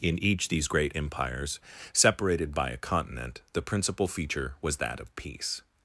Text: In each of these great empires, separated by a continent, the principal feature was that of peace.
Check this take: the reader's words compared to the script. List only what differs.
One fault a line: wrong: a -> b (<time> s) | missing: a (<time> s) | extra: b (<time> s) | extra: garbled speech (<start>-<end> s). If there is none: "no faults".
missing: of (0.5 s)